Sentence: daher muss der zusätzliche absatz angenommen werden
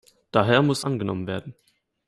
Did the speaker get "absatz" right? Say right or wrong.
wrong